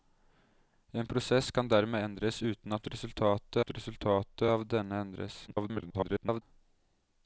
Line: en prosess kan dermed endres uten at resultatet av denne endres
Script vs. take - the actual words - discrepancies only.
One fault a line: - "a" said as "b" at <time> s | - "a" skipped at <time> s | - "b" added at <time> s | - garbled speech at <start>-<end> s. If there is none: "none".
- "at resultatet" added at 3.6 s
- garbled speech at 5.5-6.4 s